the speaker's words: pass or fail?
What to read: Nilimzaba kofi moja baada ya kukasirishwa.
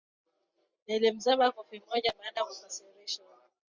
pass